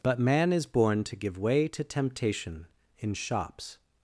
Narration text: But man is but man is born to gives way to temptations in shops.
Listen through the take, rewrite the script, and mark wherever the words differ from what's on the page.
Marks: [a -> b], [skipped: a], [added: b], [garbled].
But man is [skipped: but man is] born to [gives -> give] way to [temptations -> temptation] in shops.